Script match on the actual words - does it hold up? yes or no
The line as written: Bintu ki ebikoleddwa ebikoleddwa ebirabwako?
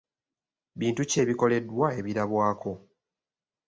no